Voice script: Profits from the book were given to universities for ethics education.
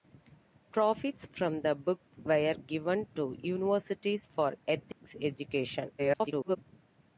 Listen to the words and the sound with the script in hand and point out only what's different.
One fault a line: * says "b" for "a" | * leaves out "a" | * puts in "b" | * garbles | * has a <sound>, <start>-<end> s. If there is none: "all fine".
* has a dropout, 4.9-5.0 s
* garbles